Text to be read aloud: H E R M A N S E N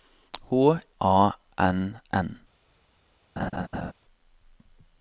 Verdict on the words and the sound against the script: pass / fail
fail